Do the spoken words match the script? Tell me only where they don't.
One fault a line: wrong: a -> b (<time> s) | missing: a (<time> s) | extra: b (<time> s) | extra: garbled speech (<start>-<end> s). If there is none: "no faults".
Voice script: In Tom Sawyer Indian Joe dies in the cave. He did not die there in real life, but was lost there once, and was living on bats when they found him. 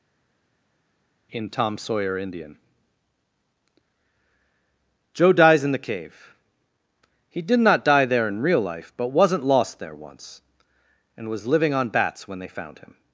wrong: was -> wasn't (9.1 s)